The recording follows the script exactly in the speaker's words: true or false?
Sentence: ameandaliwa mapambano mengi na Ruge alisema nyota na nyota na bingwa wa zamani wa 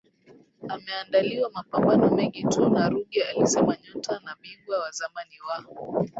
false